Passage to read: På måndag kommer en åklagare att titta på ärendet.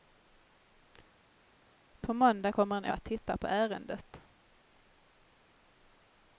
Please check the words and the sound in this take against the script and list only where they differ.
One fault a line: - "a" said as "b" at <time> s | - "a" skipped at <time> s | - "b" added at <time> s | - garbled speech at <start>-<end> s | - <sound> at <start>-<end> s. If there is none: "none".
- "åklagare" skipped at 2.9 s